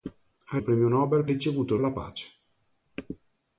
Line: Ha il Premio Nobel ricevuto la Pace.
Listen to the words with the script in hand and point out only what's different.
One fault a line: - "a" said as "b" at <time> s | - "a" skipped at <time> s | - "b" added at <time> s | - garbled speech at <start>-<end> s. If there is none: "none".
none